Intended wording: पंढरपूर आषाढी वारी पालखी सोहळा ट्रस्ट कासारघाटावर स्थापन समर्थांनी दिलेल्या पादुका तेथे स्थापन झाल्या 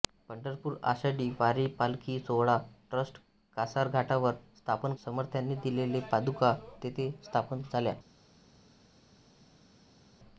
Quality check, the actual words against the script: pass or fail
pass